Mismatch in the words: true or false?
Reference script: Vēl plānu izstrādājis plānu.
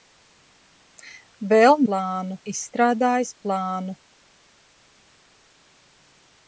false